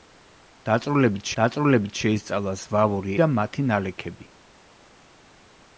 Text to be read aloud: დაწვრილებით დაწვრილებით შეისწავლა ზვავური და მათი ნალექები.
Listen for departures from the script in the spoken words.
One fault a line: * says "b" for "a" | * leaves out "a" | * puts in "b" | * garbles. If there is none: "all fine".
all fine